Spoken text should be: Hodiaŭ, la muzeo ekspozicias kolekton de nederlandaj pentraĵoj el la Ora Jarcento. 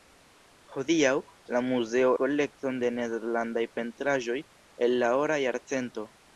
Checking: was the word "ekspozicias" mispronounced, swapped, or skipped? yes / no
yes